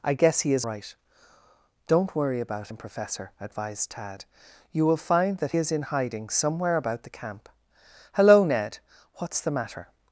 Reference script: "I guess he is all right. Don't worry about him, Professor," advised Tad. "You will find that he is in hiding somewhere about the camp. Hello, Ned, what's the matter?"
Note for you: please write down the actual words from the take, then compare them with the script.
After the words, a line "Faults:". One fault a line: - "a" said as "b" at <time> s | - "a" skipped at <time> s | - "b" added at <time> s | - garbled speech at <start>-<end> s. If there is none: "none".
"I guess he is right. Don't worry about him, Professor," advised Tad. "You will find that is in hiding somewhere about the camp. Hello, Ned, what's the matter?"
Faults:
- "all" skipped at 0.7 s
- "he" skipped at 5.5 s